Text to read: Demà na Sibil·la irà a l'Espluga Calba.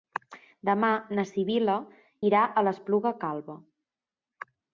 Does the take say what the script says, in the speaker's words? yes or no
yes